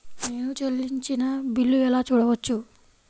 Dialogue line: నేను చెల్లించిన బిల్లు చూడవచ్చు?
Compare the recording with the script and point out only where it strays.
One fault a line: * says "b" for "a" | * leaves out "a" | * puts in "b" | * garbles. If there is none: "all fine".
* puts in "ఎలా"